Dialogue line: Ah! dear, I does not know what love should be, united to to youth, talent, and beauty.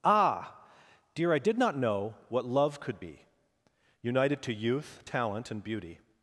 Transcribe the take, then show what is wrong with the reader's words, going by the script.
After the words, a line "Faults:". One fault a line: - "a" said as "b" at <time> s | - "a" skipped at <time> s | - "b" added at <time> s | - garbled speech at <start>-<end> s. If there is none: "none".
Ah! dear, I did not know what love could be, united to youth, talent, and beauty.
Faults:
- "does" said as "did" at 1.4 s
- "should" said as "could" at 2.8 s
- "to" skipped at 4.5 s